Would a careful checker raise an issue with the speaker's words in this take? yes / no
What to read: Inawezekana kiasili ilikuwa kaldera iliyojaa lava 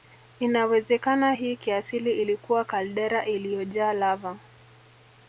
yes